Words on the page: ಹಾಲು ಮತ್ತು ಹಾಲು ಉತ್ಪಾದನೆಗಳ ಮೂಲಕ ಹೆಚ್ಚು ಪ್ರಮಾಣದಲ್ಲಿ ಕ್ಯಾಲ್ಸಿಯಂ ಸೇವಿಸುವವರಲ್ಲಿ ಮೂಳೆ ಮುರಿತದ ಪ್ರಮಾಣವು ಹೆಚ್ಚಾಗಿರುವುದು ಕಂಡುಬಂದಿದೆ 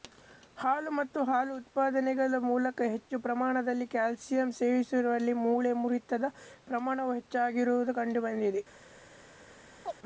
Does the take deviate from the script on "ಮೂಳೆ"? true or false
false